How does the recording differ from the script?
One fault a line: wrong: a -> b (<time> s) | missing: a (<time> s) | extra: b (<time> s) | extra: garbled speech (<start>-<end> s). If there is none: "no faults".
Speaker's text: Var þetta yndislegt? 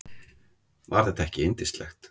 extra: ekki (1.3 s)